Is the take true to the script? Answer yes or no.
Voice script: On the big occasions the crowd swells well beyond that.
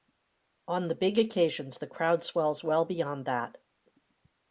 yes